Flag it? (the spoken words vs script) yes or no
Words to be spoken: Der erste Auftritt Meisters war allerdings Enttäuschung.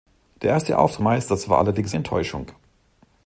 no